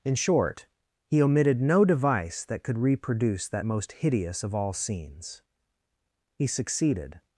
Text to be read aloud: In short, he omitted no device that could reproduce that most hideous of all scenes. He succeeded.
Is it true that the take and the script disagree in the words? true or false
false